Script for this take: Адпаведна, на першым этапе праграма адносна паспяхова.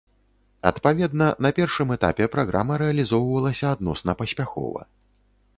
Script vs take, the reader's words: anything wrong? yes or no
yes